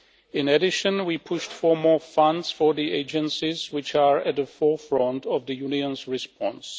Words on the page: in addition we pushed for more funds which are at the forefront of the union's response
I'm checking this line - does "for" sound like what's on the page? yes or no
yes